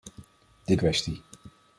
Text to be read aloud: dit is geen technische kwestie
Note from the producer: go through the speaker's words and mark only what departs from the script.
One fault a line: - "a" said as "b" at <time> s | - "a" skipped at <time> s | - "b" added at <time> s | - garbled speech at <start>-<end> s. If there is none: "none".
- "is geen technische" skipped at 0.8 s